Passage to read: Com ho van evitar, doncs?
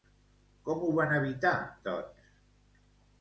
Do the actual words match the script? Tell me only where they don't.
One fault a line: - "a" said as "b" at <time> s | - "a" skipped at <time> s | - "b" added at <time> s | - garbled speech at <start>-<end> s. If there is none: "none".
none